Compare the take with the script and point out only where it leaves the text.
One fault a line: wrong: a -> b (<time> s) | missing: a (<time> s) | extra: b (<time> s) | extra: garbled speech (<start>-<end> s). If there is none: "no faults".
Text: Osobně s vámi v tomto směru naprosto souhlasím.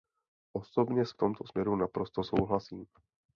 missing: vámi (1.1 s)